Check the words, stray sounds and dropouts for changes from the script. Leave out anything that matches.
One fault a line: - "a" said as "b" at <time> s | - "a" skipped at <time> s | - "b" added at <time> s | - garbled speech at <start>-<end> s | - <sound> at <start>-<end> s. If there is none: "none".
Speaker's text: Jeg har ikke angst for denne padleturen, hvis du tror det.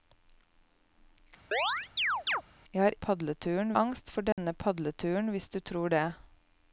- chirp at 1.5-2.4 s
- "ikke" said as "padleturen" at 2.9 s
- dropout at 4.3-4.4 s